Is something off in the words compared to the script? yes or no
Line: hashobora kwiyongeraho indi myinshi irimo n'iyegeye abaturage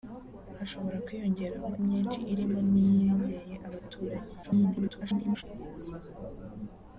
yes